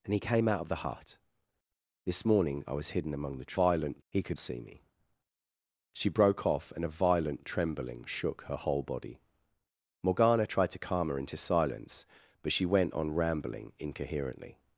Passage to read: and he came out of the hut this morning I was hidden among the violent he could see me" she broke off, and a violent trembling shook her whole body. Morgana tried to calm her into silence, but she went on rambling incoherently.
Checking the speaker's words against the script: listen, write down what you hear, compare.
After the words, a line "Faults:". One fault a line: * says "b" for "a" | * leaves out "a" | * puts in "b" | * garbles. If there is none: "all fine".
and he came out of the hut this morning I was hidden among the violent he could see me" she broke off, and a violent trembling shook her whole body. Morgana tried to calm her into silence, but she went on rambling incoherently.
Faults:
all fine